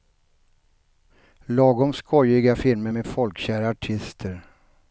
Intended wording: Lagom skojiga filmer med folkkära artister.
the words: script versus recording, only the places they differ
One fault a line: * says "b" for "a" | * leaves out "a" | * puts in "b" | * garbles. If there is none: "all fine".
all fine